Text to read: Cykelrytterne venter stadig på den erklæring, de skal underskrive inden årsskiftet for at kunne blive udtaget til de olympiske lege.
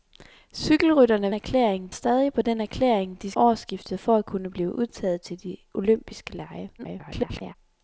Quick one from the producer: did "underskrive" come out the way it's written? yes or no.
no